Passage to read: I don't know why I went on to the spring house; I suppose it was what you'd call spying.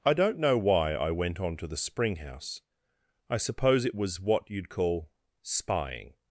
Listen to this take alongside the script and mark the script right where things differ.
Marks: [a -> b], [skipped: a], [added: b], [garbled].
I don't know why I went on to the spring house; I suppose it was what you'd call spying.